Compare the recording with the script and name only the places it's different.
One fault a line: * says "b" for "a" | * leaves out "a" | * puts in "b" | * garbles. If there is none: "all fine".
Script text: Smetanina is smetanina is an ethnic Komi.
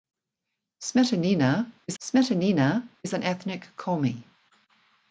all fine